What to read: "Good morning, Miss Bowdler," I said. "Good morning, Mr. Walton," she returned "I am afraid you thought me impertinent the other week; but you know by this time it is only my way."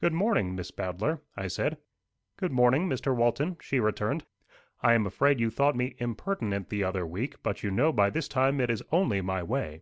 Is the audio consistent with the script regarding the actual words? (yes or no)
yes